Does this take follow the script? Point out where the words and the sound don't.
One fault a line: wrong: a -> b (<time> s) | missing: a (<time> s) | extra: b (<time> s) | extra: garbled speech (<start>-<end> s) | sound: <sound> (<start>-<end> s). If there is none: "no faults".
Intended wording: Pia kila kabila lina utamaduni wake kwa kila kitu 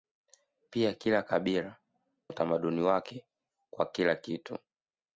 missing: lina (1.8 s)